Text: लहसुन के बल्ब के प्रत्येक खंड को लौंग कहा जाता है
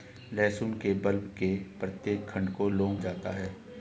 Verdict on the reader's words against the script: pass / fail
fail